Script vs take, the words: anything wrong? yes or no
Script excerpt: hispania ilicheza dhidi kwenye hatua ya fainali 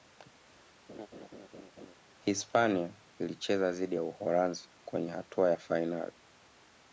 yes